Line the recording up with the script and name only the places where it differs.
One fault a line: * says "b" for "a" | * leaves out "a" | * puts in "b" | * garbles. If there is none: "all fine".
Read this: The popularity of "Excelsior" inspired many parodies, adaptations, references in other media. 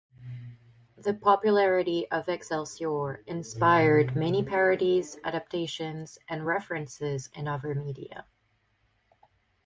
* puts in "and"